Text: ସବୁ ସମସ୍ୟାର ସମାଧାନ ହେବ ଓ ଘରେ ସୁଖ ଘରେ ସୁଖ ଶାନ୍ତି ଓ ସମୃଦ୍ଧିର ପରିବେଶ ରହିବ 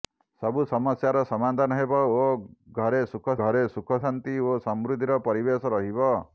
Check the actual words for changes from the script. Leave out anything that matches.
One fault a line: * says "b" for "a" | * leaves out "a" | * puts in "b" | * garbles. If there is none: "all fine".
all fine